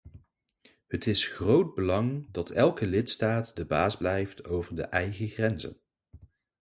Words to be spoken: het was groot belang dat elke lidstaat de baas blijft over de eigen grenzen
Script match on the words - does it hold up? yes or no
no